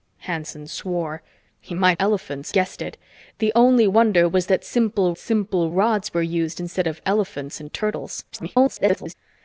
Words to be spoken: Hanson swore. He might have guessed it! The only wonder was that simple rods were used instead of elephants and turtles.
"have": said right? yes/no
no